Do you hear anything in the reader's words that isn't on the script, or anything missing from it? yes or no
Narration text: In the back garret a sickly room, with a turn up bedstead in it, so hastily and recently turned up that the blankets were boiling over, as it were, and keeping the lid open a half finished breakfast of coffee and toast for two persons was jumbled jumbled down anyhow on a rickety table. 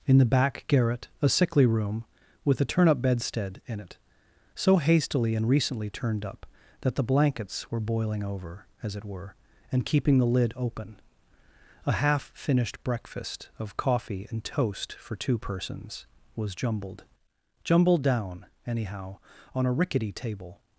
no